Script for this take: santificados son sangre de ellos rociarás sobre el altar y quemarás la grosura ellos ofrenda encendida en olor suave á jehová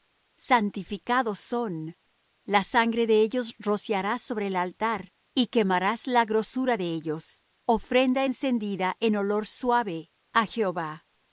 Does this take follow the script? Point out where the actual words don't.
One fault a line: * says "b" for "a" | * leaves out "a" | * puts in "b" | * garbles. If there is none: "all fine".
* puts in "la"
* puts in "de"